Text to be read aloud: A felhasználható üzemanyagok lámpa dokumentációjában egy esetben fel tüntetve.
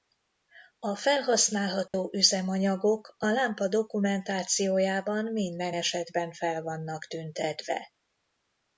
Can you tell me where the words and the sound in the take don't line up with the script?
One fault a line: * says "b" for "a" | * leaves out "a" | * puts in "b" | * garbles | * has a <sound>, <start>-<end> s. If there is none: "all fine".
* has a dropout, 1.9-1.9 s
* puts in "a"
* says "minden" for "egy"
* puts in "vannak"